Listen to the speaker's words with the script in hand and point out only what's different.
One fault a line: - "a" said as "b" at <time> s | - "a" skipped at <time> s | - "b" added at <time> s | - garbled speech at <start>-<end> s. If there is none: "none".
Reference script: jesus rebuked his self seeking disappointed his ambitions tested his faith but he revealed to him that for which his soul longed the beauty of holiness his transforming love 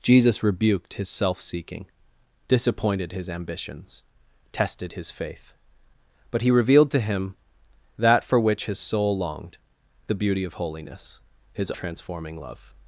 none